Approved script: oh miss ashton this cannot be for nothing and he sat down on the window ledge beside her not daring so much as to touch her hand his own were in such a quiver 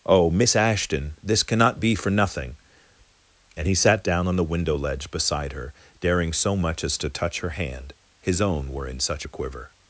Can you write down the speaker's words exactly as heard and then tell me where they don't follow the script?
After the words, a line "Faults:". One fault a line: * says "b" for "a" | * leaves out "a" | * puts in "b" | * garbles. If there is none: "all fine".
oh miss ashton this cannot be for nothing and he sat down on the window ledge beside her daring so much as to touch her hand his own were in such a quiver
Faults:
* leaves out "not"